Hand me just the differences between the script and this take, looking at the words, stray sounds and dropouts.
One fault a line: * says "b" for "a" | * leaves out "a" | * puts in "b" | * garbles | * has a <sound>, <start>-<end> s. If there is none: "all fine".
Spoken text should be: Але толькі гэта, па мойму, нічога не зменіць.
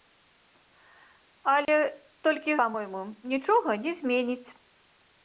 * has a dropout, 1.7-1.7 s
* leaves out "гэта"